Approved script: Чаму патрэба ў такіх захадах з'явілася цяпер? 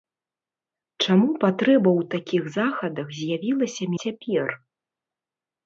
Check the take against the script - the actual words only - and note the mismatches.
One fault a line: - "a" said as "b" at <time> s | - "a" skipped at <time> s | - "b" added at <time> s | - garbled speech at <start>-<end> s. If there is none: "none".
none